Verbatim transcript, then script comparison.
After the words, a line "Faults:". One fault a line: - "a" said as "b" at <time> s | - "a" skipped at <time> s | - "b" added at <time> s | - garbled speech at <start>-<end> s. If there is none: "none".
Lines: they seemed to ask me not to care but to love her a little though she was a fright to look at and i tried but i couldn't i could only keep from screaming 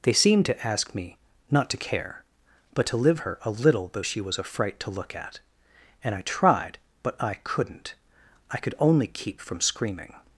they seemed to ask me not to care but to live her a little though she was a fright to look at and i tried but i couldn't i could only keep from screaming
Faults:
- "love" said as "live" at 3.0 s